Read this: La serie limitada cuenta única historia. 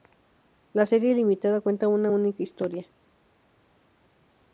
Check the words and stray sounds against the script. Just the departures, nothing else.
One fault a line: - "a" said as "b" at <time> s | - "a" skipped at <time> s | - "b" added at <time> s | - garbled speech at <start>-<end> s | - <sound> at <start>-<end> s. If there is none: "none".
- "una" added at 1.9 s